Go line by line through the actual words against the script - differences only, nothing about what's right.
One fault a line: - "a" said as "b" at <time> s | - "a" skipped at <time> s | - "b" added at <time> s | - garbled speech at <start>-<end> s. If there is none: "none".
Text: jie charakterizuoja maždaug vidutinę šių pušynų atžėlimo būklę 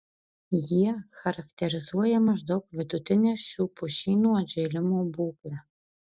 none